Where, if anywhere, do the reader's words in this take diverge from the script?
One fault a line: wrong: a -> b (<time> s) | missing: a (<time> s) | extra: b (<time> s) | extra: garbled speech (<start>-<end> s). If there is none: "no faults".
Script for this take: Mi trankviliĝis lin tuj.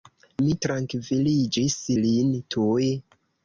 no faults